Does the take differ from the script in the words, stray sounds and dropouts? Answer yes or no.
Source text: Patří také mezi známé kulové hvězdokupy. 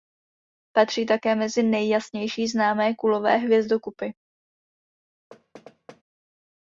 yes